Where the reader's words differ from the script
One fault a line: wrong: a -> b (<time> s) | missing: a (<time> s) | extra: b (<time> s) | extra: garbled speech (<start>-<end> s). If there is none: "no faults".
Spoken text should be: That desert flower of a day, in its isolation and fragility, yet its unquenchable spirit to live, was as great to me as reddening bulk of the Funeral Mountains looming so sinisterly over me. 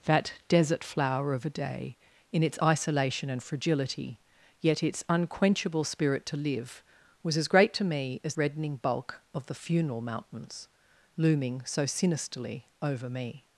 no faults